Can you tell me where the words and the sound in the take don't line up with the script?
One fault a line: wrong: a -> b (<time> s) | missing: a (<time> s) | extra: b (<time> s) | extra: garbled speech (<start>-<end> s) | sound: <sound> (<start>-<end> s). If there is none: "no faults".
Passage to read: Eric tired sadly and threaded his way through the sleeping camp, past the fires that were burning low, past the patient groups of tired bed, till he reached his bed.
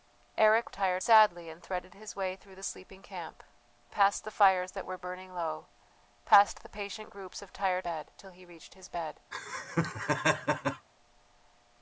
sound: laugh (9.3-10.9 s)